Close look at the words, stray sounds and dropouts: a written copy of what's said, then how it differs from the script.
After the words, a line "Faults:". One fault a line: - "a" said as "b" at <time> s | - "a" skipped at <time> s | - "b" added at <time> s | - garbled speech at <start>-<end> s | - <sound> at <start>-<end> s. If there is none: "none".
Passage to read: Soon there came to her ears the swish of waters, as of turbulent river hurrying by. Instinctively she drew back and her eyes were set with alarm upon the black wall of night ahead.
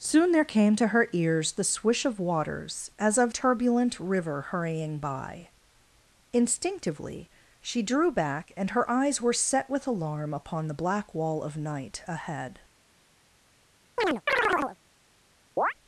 Soon there came to her ears the swish of waters, as of turbulent river hurrying by. Instinctively she drew back and her eyes were set with alarm upon the black wall of night ahead.
Faults:
- chirp at 14.0-14.8 s
- chirp at 15.6-15.7 s